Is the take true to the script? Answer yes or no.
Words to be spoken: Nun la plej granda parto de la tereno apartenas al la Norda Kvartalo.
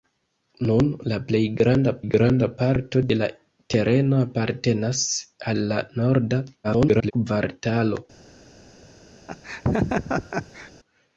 no